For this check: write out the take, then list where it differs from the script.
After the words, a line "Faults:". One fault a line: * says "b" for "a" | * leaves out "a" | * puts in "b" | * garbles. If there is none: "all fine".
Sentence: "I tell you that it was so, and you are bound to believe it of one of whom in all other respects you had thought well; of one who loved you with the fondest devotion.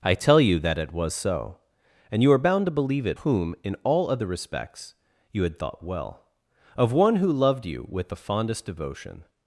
"I tell you that it was so, and you are bound to believe it whom in all other respects you had thought well; of one who loved you with the fondest devotion.
Faults:
* leaves out "of one of"